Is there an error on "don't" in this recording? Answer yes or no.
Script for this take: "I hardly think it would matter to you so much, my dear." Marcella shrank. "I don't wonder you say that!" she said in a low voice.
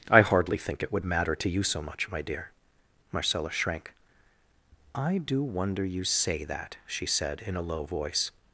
yes